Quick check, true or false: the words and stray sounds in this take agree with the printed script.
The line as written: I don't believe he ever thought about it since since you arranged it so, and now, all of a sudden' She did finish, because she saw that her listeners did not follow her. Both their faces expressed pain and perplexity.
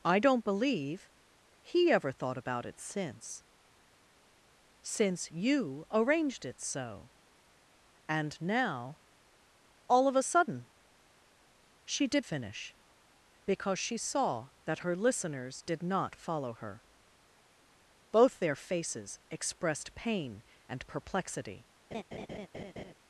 false